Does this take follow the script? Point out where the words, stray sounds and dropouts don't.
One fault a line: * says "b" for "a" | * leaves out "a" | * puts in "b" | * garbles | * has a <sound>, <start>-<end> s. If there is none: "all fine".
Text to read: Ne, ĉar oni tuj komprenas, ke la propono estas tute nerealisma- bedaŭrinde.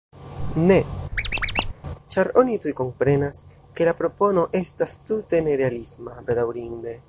* has a squeak, 1.1-1.7 s